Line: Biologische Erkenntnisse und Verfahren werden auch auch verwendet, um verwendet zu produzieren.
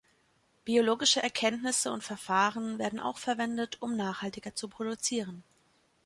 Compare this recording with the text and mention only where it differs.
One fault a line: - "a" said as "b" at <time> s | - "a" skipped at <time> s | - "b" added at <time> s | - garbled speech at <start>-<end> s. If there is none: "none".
- "auch" skipped at 3.2 s
- "verwendet" said as "nachhaltiger" at 4.0 s